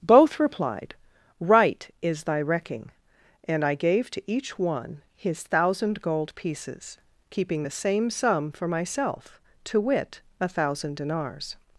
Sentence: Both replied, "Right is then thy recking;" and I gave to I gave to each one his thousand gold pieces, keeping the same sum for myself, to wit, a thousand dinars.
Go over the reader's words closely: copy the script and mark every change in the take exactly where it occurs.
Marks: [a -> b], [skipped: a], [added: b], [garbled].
Both replied, "Right is [skipped: then] thy recking;" and I gave to [skipped: I gave to] each one his thousand gold pieces, keeping the same sum for myself, to wit, a thousand dinars.